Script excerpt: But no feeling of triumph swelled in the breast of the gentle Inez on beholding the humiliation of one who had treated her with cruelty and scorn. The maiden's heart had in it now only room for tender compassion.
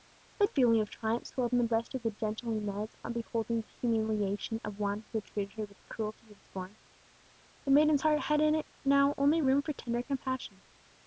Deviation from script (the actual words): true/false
true